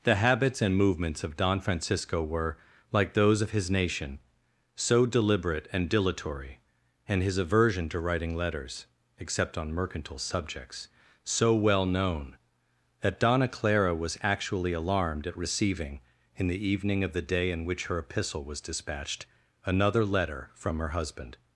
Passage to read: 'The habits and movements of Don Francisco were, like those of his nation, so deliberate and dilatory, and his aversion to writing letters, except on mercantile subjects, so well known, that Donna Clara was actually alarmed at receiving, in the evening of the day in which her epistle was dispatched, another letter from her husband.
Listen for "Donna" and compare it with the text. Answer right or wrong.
right